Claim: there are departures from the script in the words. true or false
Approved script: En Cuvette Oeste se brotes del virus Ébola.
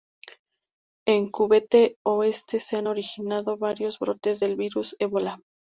true